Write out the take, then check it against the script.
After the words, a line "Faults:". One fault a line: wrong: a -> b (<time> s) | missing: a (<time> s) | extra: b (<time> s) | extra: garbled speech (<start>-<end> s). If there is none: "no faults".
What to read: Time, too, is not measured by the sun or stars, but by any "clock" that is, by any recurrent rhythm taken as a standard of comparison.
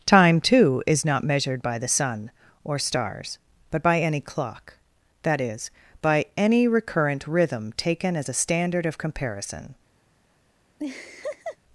Time, too, is not measured by the sun or stars, but by any "clock" that is, by any recurrent rhythm taken as a standard of comparison.
Faults:
no faults